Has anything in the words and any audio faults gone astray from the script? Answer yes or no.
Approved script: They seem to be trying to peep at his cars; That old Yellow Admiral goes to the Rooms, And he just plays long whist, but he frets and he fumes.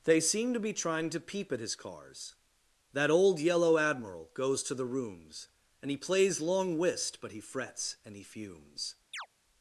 yes